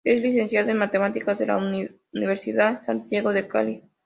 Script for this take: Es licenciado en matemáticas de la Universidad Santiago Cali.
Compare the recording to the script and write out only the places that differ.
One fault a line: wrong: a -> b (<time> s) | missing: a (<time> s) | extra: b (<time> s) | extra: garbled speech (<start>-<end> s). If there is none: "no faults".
extra: de (3.3 s)